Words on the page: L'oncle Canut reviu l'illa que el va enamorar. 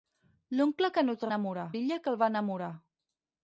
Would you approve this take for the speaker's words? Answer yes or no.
no